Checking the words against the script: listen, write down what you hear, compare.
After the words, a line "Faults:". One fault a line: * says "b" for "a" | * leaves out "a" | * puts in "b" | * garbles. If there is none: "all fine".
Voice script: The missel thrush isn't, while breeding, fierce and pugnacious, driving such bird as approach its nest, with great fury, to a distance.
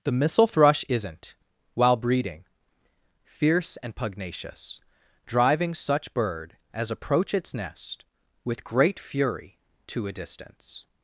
The missel thrush isn't, while breeding, fierce and pugnacious, driving such bird as approach its nest, with great fury, to a distance.
Faults:
all fine